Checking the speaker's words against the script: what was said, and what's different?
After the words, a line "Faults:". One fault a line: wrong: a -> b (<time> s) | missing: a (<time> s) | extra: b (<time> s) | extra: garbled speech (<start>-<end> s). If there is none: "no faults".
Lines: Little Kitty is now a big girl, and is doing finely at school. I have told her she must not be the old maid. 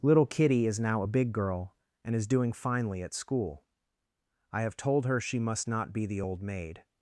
Little Kitty is now a big girl, and is doing finely at school. I have told her she must not be the old maid.
Faults:
no faults